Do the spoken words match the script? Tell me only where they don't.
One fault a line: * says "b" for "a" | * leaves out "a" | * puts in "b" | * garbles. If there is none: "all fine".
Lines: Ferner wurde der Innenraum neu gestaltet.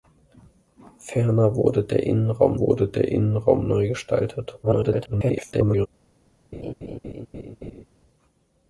* puts in "wurde der Innenraum"
* garbles